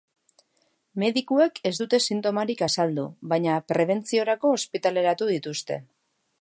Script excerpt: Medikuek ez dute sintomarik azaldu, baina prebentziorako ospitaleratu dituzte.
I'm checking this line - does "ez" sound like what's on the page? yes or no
yes